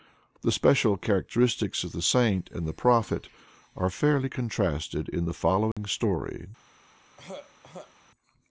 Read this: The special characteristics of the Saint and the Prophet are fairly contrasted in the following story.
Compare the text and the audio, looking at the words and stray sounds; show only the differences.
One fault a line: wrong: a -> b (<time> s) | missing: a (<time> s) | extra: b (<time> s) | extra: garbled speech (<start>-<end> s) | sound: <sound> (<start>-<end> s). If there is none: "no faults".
sound: dropout (5.7-5.8 s)
sound: throat clearing (7.2-7.9 s)